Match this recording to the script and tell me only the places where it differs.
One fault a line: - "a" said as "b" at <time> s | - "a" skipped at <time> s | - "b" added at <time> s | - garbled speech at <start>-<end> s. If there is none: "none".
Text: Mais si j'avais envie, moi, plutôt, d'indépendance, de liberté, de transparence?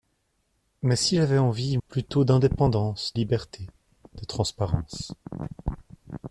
- "moi" skipped at 1.8 s
- "de" skipped at 3.1 s